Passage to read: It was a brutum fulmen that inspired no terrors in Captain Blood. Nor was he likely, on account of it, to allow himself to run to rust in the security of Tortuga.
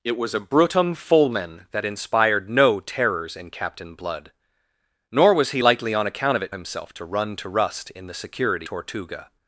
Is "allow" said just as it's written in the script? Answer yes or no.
no